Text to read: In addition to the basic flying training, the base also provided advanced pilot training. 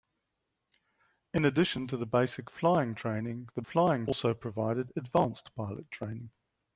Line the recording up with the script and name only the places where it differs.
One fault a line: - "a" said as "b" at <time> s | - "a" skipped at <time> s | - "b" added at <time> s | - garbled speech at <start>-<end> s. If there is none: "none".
- "base" said as "flying" at 3.6 s